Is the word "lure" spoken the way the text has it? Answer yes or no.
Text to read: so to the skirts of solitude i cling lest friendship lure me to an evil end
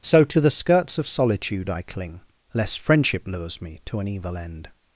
no